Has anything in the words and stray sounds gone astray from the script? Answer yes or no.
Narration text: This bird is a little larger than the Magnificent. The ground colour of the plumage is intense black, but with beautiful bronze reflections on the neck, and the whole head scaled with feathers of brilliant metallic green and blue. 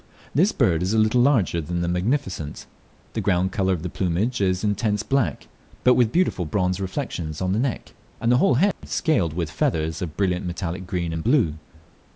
yes